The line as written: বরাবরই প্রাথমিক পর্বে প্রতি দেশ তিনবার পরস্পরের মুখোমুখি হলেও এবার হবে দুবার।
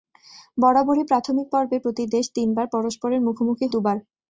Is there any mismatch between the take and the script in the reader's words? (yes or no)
yes